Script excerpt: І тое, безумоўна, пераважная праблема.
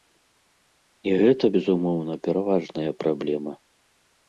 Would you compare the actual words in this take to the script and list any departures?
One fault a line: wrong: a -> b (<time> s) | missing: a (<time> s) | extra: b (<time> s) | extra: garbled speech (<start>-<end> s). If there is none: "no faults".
wrong: тое -> гэта (1.2 s)